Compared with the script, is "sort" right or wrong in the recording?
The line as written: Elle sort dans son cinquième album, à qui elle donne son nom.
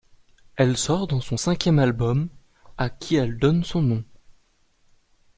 right